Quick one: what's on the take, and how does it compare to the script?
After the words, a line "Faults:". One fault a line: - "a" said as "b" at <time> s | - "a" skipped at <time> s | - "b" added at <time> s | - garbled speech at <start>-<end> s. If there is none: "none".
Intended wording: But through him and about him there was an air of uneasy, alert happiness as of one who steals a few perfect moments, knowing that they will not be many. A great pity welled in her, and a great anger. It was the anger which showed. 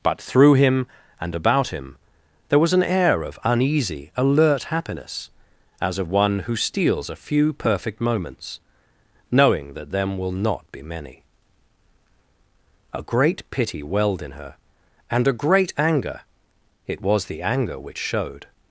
But through him and about him there was an air of uneasy, alert happiness as of one who steals a few perfect moments, knowing that them will not be many. A great pity welled in her, and a great anger. It was the anger which showed.
Faults:
- "they" said as "them" at 9.9 s